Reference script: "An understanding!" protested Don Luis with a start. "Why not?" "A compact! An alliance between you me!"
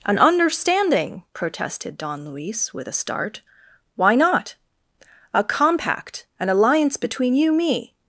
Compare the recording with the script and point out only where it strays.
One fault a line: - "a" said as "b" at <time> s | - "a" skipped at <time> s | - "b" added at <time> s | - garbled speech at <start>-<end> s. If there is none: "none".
none